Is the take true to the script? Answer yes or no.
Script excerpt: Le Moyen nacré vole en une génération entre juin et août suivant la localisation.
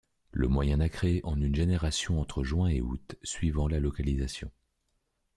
no